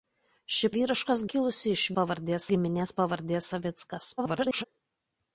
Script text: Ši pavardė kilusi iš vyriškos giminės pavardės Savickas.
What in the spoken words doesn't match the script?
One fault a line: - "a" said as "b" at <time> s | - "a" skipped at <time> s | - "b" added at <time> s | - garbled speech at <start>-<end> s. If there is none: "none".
- "pavardė" said as "vyriškos" at 0.8 s
- "vyriškos" said as "pavardės" at 2.0 s
- garbled speech at 4.2-4.6 s